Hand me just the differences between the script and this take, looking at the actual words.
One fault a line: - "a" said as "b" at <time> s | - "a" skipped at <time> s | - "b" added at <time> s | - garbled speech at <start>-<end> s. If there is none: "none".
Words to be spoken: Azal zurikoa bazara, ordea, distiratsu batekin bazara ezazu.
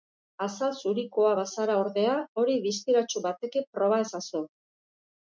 - "hori" added at 2.4 s
- "bazara" said as "proba" at 3.8 s